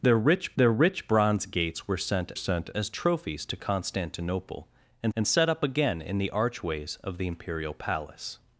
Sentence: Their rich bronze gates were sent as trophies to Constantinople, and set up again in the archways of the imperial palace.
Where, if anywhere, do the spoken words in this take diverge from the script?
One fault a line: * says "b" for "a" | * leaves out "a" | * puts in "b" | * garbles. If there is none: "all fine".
* puts in "their rich"
* puts in "sent"
* puts in "and"